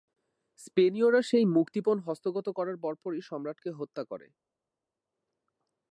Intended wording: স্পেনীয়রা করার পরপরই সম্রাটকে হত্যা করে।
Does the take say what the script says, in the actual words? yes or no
no